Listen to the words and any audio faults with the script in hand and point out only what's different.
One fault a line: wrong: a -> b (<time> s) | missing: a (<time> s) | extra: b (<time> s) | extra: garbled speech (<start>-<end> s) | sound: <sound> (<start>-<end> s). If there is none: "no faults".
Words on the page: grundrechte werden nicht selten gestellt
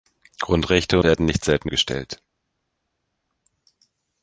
no faults